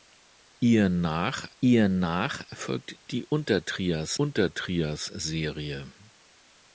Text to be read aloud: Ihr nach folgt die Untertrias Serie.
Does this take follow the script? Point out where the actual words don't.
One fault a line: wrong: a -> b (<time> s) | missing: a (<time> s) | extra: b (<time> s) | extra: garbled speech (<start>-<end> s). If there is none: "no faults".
extra: ihr nach (1.6 s)
extra: Untertrias (4.1 s)